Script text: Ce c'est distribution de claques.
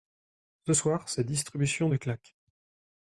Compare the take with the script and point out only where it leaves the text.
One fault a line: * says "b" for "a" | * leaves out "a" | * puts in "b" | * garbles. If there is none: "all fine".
* puts in "soir"